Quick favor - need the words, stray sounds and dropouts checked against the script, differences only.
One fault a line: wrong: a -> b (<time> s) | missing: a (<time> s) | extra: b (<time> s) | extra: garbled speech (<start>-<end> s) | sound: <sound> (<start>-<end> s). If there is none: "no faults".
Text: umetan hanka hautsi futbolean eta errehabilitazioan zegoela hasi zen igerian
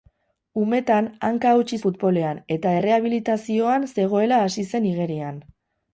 no faults